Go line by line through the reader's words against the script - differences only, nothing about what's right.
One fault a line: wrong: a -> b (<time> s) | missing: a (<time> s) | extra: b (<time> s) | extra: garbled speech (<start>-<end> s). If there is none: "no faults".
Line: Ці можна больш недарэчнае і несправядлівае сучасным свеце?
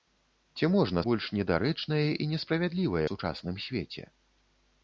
no faults